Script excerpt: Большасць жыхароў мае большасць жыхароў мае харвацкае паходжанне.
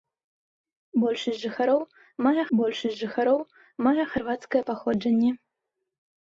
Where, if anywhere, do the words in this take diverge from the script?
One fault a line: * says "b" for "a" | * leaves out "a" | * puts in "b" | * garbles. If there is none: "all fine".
all fine